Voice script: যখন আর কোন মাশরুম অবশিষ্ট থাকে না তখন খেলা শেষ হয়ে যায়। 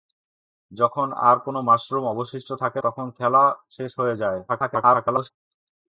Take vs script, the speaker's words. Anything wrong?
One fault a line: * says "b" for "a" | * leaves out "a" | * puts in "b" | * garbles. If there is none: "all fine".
* leaves out "না"
* garbles